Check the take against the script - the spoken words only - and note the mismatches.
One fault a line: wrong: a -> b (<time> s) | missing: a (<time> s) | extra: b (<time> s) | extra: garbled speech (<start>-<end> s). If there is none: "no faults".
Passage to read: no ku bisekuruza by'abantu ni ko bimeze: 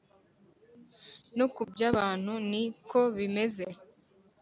missing: bisekuruza (1.6 s)